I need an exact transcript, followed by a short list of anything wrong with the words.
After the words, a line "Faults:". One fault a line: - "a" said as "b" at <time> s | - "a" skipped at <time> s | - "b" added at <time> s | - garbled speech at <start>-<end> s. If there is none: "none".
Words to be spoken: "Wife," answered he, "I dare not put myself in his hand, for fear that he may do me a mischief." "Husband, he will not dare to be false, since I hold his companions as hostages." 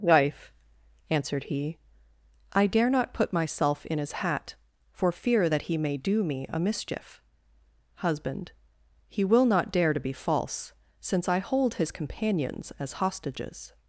"Wife," answered he, "I dare not put myself in his hat, for fear that he may do me a mischief." "Husband, he will not dare to be false, since I hold his companions as hostages."
Faults:
- "hand" said as "hat" at 4.1 s